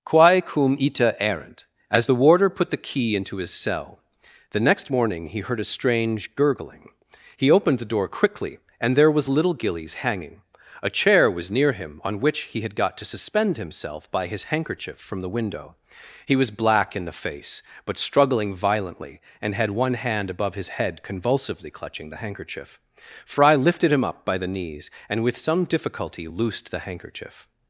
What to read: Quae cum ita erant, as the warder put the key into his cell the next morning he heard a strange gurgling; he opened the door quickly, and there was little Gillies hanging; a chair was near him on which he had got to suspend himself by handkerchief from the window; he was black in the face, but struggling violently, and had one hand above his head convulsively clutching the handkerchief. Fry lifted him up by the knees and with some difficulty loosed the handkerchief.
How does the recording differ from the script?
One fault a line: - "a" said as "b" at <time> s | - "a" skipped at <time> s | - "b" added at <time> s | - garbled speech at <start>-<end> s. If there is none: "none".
- "his" added at 14.3 s